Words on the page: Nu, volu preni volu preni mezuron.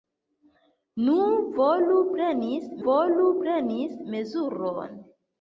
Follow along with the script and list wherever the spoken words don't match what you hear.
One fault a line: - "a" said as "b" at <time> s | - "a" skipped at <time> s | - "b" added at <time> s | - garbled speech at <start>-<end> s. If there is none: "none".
none